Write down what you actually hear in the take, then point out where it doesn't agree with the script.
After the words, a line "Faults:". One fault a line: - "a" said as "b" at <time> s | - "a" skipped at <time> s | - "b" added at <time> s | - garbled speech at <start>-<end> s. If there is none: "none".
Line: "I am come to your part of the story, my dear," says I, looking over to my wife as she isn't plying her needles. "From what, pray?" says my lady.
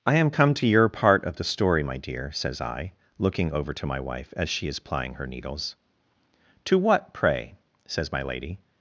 "I am come to your part of the story, my dear," says I, looking over to my wife as she is plying her needles. "To what, pray?" says my lady.
Faults:
- "isn't" said as "is" at 4.7 s
- "From" said as "To" at 6.6 s